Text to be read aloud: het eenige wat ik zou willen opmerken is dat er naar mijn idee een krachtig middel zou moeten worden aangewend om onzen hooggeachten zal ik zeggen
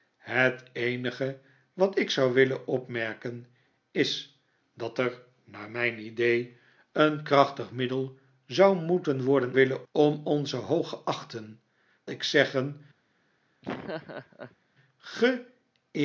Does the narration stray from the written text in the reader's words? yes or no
yes